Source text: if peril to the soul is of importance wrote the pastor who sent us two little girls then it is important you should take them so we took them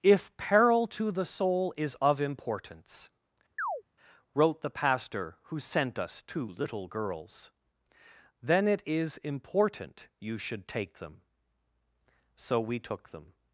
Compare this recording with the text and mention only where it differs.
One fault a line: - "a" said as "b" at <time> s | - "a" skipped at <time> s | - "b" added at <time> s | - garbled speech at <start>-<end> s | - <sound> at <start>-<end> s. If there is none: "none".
- chirp at 3.6-3.8 s